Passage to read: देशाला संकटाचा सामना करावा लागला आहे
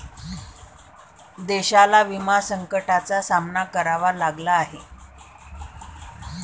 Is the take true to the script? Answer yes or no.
no